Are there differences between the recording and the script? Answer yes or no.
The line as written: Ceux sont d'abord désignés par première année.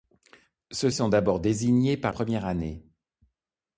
no